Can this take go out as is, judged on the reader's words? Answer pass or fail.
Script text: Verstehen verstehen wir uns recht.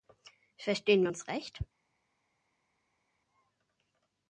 fail